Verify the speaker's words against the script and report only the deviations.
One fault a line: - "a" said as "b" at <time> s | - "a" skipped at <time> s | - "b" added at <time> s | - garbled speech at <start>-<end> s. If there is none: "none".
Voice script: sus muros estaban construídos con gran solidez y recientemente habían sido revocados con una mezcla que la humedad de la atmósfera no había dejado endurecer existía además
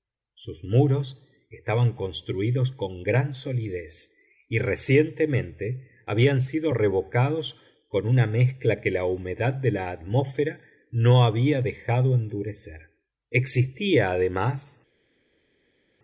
none